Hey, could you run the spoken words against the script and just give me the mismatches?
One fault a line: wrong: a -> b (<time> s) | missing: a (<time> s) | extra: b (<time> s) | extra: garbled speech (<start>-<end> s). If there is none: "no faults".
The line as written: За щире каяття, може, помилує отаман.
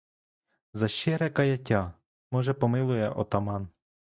no faults